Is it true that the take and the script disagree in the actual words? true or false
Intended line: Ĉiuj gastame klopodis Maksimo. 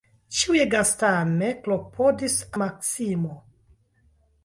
false